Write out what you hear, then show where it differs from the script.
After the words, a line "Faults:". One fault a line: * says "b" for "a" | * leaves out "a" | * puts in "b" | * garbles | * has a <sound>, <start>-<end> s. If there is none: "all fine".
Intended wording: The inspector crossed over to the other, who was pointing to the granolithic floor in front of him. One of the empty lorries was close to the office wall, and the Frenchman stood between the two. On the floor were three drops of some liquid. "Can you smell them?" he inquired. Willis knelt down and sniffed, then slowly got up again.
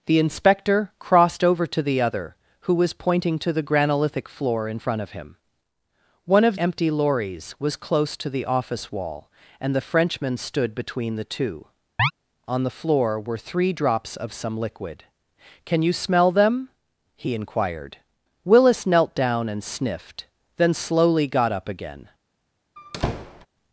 The inspector crossed over to the other, who was pointing to the granolithic floor in front of him. One of empty lorries was close to the office wall, and the Frenchman stood between the two. On the floor were three drops of some liquid. "Can you smell them?" he inquired. Willis knelt down and sniffed, then slowly got up again.
Faults:
* leaves out "the"
* has a chirp, 12.0-12.1 s
* has a squeak, 22.8-23.5 s